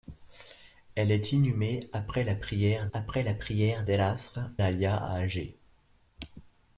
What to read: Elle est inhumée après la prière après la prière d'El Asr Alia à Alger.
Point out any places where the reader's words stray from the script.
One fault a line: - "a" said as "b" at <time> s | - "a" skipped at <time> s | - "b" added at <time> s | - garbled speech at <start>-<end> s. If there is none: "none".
none